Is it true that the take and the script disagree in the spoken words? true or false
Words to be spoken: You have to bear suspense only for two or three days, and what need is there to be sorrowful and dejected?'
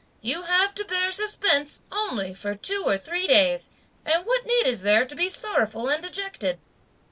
false